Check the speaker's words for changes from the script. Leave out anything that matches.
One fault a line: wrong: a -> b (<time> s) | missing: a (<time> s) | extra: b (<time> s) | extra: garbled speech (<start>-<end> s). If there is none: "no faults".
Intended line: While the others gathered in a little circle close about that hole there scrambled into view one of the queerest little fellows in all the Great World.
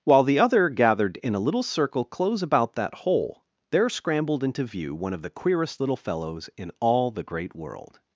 wrong: others -> other (0.4 s)